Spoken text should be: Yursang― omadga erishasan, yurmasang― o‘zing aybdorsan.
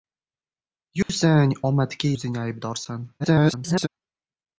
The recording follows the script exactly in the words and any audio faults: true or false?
false